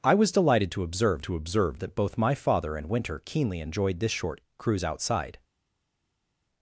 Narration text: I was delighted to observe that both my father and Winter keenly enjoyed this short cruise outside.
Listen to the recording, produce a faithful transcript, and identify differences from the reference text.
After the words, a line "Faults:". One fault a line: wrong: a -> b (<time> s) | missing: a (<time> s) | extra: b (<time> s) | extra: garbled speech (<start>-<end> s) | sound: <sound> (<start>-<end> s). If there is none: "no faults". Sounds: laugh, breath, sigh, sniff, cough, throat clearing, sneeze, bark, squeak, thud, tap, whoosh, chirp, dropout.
I was delighted to observe to observe that both my father and Winter keenly enjoyed this short cruise outside.
Faults:
extra: to observe (1.2 s)